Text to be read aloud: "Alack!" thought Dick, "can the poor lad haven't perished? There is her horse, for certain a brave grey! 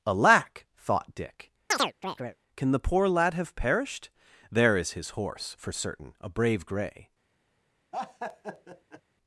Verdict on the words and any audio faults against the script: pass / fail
fail